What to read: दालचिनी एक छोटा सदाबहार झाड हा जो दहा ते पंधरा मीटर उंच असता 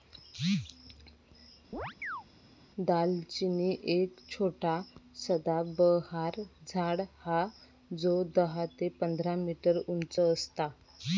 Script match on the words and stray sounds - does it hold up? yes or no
no